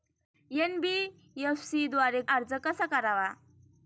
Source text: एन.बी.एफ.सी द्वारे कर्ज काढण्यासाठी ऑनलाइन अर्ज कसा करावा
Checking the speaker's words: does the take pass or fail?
fail